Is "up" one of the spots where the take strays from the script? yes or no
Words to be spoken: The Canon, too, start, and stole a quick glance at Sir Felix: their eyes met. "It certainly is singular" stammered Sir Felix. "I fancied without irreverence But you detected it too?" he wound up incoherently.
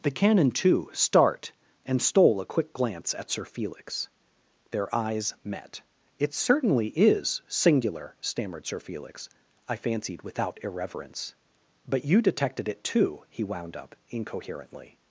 no